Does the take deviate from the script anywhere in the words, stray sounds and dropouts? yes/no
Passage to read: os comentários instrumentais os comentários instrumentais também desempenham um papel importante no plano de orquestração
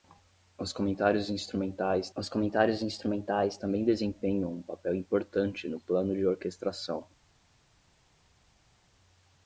no